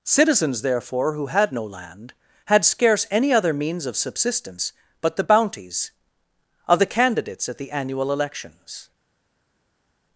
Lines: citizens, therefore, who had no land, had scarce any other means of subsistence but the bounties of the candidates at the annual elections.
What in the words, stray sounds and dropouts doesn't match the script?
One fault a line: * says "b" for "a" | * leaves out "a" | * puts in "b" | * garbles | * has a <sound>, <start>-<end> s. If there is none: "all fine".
all fine